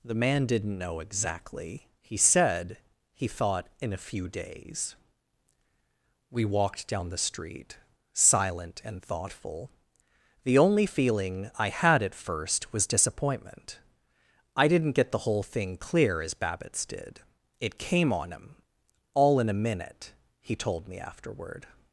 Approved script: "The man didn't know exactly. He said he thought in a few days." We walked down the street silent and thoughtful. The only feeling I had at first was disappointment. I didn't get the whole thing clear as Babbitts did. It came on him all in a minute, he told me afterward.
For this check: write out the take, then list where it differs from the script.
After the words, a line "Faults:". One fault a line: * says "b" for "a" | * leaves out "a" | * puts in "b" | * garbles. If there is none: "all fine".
"The man didn't know exactly. He said he thought in a few days." We walked down the street silent and thoughtful. The only feeling I had at first was disappointment. I didn't get the whole thing clear as Babbitts did. It came on him all in a minute, he told me afterward.
Faults:
all fine